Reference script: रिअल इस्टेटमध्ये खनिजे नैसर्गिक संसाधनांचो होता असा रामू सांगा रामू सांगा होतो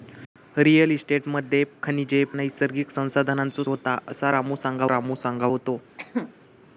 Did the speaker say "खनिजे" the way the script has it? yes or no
yes